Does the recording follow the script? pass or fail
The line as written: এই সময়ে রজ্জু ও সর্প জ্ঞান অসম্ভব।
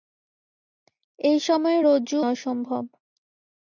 fail